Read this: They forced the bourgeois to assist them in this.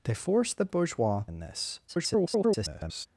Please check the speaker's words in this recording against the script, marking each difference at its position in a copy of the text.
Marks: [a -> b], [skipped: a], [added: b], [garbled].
They forced the bourgeois [skipped: to assist them] in this. [garbled]